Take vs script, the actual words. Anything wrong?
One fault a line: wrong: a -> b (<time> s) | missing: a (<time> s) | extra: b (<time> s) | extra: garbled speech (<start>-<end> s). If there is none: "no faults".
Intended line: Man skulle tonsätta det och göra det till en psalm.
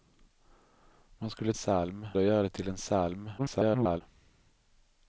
wrong: tonsätta -> psalm (1.5 s)
extra: garbled speech (3.4-4.0 s)